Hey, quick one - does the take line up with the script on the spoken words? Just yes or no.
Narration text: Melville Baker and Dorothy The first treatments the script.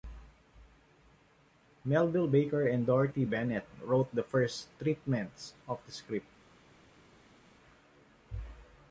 no